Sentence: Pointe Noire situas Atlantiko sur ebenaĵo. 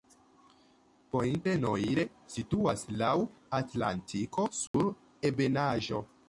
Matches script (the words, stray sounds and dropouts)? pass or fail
fail